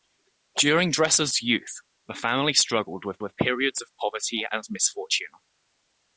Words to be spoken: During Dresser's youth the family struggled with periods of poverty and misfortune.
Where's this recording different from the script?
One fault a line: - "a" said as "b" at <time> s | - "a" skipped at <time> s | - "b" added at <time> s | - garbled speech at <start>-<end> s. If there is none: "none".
- "with" added at 3.2 s